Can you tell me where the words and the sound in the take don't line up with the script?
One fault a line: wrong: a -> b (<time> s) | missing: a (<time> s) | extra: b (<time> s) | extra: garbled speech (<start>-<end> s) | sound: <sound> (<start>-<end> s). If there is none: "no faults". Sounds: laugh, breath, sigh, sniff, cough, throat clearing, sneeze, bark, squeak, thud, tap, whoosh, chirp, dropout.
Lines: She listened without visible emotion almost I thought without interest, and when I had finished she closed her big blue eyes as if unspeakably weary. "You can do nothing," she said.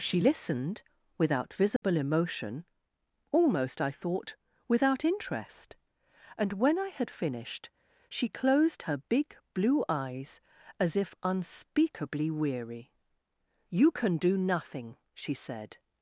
sound: dropout (1.8-1.8 s)